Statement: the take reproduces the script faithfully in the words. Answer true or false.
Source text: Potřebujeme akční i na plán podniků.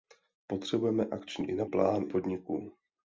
true